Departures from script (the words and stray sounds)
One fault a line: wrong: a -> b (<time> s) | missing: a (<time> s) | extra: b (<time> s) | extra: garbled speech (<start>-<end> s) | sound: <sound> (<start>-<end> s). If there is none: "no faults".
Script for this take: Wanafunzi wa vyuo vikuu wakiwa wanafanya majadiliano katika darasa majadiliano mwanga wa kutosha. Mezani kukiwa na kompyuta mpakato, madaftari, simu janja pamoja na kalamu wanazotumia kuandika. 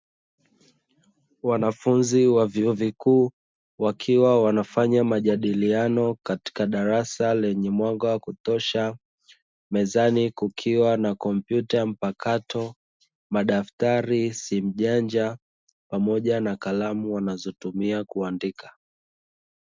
wrong: majadiliano -> lenye (7.3 s)